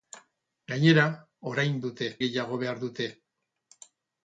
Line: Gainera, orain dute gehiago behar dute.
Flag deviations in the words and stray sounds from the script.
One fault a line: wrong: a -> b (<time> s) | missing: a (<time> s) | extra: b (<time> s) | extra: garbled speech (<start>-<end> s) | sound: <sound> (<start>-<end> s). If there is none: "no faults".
no faults